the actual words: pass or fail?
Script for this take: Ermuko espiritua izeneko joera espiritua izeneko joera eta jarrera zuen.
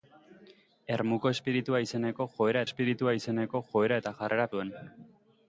pass